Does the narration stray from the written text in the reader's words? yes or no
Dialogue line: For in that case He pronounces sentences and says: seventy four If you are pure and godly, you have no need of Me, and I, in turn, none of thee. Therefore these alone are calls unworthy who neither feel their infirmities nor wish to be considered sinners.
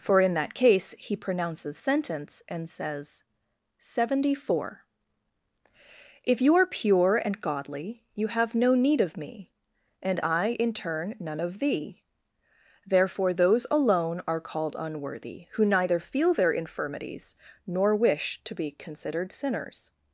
yes